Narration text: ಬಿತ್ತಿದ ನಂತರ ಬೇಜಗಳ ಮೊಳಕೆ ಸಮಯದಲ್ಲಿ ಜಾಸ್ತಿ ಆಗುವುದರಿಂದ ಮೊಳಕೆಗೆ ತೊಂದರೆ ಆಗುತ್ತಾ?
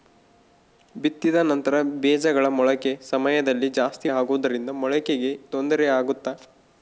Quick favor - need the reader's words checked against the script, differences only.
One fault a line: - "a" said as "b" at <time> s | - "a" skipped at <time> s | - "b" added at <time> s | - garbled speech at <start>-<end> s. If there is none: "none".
none